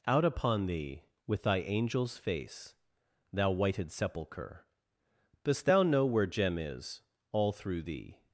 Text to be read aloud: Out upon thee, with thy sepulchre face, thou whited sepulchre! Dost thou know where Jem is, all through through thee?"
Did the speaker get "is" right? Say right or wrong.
right